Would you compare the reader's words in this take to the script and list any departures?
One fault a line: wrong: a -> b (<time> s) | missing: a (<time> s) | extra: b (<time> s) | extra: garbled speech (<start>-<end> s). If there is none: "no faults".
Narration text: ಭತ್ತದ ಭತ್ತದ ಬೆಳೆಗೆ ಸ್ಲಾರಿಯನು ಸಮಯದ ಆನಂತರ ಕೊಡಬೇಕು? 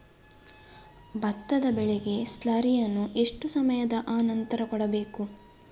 missing: ಭತ್ತದ (1.6 s)
extra: ಎಷ್ಟು (3.1 s)